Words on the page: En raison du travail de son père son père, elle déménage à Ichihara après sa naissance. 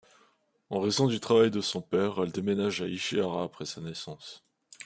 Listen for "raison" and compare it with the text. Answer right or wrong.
right